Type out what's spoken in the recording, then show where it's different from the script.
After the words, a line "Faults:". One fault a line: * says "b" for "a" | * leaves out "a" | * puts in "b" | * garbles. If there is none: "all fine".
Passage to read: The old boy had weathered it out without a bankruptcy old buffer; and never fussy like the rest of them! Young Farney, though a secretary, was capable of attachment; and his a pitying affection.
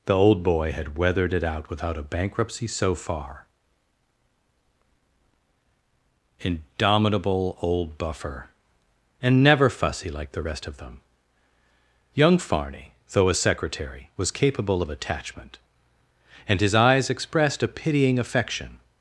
The old boy had weathered it out without a bankruptcy so far. Indomitable old buffer; and never fussy like the rest of them! Young Farney, though a secretary, was capable of attachment; and his eyes expressed a pitying affection.
Faults:
* puts in "so far Indomitable"
* puts in "eyes expressed"